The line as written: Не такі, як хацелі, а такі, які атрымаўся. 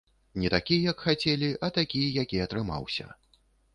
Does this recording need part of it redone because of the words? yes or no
no